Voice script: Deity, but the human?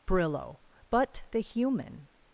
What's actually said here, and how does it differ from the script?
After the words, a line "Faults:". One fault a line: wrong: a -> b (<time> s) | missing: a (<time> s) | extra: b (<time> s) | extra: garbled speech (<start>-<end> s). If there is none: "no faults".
Brillo, but the human?
Faults:
wrong: Deity -> Brillo (0.1 s)